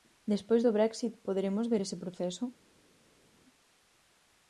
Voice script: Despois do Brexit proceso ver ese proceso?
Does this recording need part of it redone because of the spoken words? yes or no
yes